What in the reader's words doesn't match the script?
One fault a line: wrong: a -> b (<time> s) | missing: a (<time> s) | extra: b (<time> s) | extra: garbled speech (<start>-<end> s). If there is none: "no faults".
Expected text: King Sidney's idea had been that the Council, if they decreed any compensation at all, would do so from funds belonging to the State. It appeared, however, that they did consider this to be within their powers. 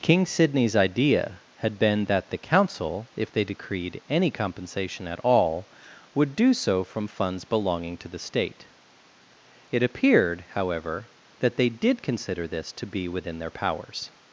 no faults